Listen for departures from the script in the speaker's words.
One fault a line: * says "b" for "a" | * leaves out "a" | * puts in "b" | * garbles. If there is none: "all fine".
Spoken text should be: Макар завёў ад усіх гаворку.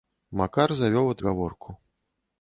* leaves out "усіх"